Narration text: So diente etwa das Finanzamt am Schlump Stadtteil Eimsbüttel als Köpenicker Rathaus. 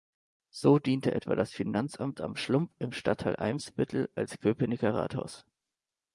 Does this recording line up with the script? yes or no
no